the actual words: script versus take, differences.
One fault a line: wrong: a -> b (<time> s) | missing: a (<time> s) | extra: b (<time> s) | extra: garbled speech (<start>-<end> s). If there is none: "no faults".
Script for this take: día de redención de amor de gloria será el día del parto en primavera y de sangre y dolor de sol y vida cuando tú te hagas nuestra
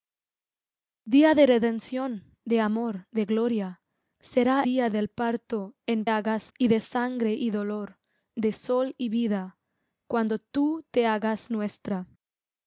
missing: el (4.7 s)
wrong: primavera -> hagas (6.1 s)